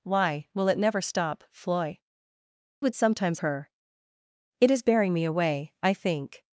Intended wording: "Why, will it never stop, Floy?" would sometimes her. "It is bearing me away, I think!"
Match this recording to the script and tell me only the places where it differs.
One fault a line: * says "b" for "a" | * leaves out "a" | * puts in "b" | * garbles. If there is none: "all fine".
all fine